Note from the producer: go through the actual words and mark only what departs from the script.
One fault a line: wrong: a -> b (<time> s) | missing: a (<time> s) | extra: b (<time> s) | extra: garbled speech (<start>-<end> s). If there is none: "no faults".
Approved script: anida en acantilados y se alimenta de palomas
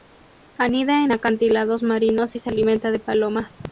extra: marinos (1.8 s)